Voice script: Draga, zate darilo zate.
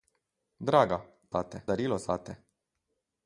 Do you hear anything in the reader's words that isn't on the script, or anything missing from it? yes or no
no